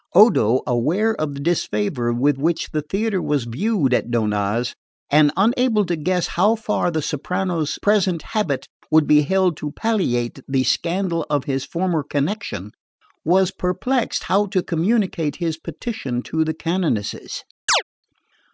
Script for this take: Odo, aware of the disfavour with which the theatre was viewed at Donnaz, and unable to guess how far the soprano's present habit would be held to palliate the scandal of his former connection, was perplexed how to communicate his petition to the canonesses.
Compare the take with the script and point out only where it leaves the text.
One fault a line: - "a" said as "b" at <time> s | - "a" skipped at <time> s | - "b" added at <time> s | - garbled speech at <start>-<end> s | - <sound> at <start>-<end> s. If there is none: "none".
- chirp at 17.7-17.8 s